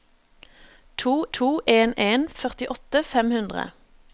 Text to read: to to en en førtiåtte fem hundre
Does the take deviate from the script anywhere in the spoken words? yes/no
no